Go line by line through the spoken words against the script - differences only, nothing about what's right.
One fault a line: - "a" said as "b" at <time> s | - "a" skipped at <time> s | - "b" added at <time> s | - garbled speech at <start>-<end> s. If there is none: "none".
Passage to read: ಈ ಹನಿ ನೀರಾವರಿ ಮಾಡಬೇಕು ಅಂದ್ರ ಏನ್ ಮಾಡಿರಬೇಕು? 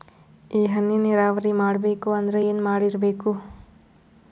none